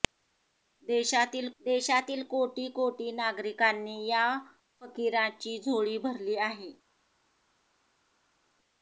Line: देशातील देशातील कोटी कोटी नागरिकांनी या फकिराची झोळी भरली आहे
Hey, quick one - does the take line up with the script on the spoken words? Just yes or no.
yes